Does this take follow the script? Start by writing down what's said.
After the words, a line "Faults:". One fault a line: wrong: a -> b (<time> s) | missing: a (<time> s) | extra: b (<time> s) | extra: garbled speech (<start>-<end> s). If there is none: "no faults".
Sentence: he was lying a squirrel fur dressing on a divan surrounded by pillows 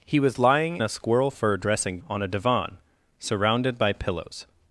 he was lying a squirrel fur dressing on a divan surrounded by pillows
Faults:
no faults